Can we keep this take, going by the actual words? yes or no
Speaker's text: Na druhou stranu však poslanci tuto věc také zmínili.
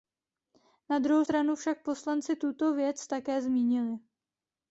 yes